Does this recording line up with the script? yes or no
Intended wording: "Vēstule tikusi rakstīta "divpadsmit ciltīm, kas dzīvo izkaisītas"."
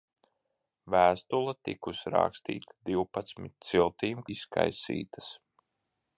no